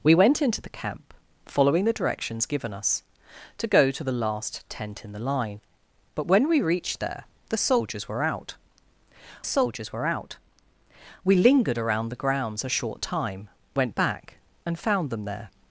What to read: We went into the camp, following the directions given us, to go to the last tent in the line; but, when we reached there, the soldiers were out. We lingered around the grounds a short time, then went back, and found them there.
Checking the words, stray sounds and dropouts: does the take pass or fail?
fail